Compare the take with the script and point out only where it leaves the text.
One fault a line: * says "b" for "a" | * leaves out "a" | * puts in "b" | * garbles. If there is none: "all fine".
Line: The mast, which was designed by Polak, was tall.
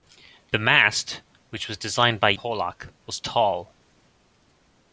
all fine